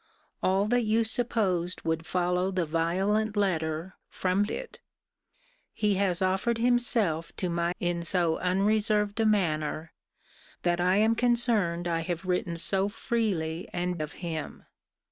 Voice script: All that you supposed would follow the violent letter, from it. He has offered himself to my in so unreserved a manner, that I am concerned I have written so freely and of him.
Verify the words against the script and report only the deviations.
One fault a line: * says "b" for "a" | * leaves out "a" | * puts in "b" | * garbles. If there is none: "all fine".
all fine